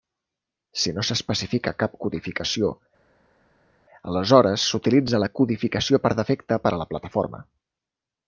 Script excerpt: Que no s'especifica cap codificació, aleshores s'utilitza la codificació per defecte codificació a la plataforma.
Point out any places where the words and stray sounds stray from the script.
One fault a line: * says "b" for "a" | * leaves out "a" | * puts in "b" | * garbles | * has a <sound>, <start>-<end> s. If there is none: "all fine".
* says "Si" for "Que"
* says "per" for "codificació"